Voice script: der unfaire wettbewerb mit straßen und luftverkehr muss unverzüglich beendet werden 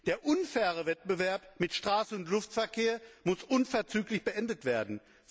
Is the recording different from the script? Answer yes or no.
no